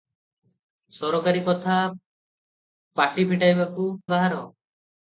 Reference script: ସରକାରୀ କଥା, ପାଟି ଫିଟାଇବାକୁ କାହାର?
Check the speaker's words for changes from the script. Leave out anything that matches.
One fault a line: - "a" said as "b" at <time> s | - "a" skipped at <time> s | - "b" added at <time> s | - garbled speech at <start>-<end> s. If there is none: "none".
none